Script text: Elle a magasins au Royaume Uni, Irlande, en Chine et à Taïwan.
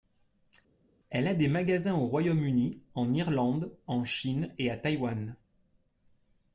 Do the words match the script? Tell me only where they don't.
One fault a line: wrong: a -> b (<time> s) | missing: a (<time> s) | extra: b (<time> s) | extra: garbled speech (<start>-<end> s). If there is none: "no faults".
extra: des (1.3 s)
extra: en (2.9 s)